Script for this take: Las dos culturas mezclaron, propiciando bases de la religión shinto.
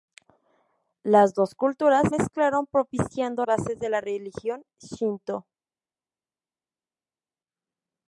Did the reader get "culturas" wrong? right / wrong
right